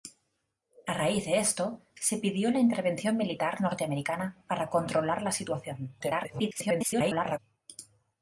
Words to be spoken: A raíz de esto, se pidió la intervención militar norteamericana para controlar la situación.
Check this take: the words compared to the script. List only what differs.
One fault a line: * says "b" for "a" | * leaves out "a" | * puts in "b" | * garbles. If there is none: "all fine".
* garbles